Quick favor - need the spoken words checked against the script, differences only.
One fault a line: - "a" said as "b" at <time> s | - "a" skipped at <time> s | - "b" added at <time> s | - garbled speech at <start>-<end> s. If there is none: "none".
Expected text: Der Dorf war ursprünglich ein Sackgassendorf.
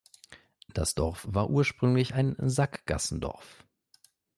- "Der" said as "Das" at 0.7 s